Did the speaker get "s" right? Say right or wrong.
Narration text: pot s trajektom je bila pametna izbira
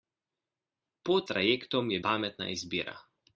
wrong